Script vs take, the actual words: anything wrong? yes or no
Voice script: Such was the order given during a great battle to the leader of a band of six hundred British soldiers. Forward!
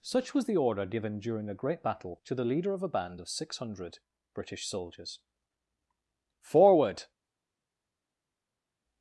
no